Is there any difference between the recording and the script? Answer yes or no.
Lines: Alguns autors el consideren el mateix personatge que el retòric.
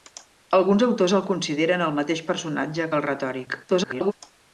yes